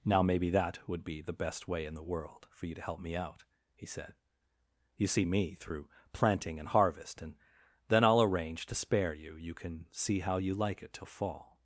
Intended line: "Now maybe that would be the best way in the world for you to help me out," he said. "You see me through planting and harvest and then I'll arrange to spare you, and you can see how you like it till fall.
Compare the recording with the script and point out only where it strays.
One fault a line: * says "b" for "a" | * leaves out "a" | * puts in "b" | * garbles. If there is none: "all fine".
* leaves out "and"